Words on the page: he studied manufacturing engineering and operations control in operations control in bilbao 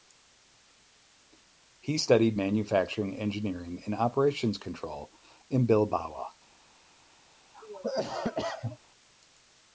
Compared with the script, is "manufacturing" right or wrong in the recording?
right